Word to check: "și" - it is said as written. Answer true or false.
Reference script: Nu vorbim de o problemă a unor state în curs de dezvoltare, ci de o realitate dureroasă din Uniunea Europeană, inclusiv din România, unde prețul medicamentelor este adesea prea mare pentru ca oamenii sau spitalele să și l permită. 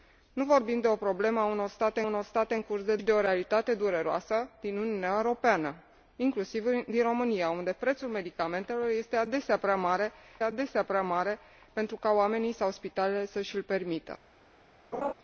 true